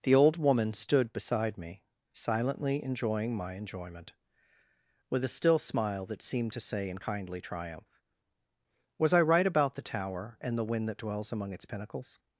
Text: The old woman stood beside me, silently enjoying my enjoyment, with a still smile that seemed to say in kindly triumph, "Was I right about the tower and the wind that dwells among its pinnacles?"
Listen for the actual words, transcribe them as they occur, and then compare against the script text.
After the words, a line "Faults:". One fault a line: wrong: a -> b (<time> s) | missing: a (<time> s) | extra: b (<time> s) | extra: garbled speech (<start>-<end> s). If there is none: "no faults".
The old woman stood beside me, silently enjoying my enjoyment, with a still smile that seemed to say in kindly triumph, "Was I right about the tower and the wind that dwells among its pinnacles?"
Faults:
no faults